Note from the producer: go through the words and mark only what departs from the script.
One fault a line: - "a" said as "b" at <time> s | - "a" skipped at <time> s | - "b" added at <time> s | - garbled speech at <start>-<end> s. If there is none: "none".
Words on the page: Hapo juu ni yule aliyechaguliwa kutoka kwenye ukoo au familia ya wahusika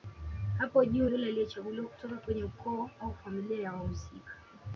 - "ni" skipped at 1.1 s